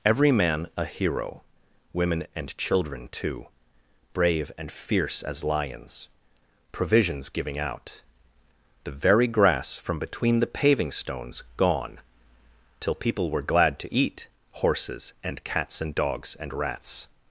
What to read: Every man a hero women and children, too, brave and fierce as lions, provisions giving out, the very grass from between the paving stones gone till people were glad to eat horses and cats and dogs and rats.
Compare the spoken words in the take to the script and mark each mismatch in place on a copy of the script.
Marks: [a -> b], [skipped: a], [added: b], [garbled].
Every man a hero women and children, too, brave and fierce as lions, provisions giving out, the very grass from between the paving stones gone till people were glad to eat horses and cats and dogs and rats.